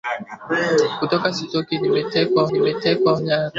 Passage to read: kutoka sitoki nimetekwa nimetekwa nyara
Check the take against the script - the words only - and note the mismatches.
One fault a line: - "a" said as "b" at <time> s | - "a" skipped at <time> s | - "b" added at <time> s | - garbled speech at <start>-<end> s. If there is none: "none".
none